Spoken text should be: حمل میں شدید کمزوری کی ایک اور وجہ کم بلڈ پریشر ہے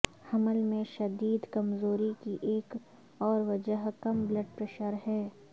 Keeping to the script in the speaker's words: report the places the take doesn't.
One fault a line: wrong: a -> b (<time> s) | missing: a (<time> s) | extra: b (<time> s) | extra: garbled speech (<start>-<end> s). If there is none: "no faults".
no faults